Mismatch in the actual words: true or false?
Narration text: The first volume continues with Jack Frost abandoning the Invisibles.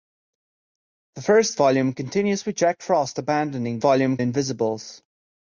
true